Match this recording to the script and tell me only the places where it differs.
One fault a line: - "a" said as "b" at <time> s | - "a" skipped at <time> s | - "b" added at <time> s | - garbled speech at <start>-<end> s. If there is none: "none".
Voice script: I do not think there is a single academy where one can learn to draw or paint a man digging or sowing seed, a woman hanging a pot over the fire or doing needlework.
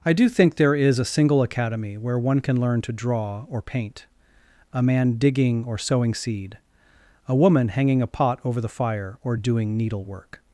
- "not" skipped at 0.3 s